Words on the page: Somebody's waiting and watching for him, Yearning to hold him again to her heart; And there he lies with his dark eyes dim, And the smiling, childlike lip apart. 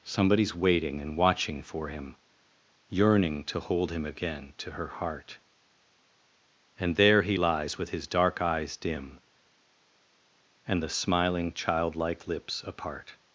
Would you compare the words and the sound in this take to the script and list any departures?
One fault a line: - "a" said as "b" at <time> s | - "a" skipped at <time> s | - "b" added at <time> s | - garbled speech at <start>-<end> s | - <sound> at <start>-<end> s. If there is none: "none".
- "lip" said as "lips" at 12.3 s